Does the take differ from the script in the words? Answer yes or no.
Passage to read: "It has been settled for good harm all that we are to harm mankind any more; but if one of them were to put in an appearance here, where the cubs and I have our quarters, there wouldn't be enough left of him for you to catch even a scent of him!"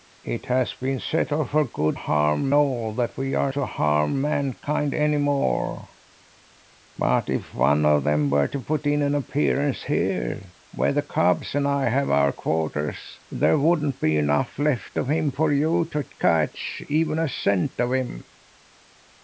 no